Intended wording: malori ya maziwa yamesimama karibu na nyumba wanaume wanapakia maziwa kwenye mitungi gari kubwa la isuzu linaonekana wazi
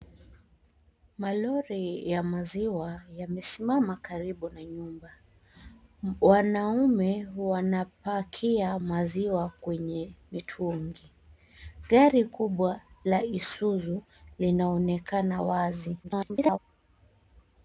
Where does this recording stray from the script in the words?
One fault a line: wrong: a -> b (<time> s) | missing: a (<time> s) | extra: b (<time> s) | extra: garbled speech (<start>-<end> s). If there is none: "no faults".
extra: garbled speech (16.0-16.6 s)